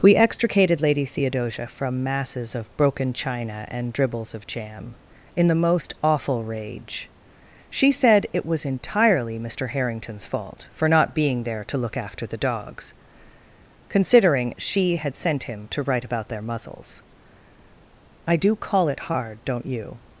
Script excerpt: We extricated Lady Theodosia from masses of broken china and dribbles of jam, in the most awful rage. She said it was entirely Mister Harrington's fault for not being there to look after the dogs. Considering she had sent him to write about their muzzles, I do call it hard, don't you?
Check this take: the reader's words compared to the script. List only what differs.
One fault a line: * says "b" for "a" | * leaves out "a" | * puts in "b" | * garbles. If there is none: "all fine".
all fine